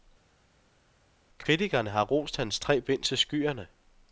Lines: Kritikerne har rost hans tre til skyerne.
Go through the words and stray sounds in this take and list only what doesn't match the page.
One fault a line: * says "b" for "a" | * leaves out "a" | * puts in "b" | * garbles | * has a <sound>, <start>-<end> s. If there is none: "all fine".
* puts in "bind"